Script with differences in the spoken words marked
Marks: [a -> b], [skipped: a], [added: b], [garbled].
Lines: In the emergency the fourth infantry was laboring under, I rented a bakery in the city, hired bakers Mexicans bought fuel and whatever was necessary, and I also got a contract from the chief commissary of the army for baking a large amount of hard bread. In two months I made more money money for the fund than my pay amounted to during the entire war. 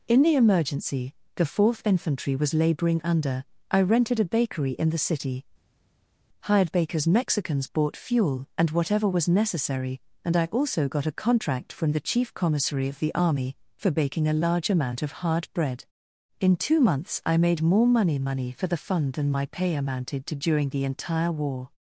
In the emergency the fourth infantry was laboring under, I rented a bakery in the city, hired bakers Mexicans bought fuel and whatever was necessary, and I also got a contract from the chief commissary of the army for baking a large amount of hard bread. In two months I made more money money for the fund than my pay amounted to during the entire war.